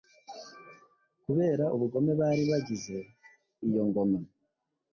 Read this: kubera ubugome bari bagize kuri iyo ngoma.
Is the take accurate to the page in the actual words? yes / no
no